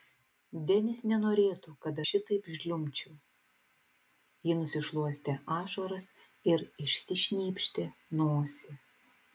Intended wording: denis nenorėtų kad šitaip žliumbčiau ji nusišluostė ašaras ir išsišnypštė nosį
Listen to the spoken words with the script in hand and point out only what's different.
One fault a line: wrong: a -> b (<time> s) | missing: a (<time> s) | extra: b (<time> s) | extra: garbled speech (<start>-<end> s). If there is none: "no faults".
no faults